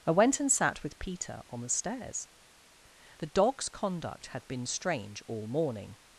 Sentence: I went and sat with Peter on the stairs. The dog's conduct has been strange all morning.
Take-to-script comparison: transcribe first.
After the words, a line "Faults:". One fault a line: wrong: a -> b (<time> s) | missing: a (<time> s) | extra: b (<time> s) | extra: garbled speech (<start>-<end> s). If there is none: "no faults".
I went and sat with Peter on the stairs. The dog's conduct had been strange all morning.
Faults:
wrong: has -> had (4.3 s)